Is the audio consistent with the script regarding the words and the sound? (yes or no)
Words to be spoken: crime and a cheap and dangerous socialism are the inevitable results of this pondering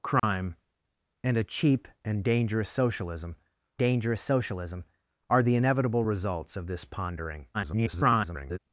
no